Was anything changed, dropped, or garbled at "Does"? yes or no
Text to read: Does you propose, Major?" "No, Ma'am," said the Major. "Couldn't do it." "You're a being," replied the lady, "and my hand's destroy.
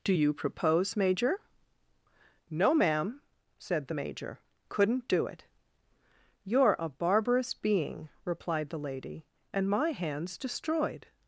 yes